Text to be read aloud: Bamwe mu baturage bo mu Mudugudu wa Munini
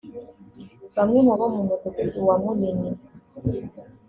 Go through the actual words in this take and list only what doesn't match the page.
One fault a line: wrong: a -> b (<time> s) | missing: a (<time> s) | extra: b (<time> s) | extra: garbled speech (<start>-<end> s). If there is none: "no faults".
missing: baturage (1.3 s)